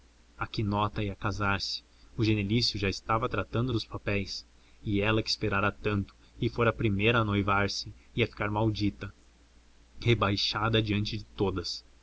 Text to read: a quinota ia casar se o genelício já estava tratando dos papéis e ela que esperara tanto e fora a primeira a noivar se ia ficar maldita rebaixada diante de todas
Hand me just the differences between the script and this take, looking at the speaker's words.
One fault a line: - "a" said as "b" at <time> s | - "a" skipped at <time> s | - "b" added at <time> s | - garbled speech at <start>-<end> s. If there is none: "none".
none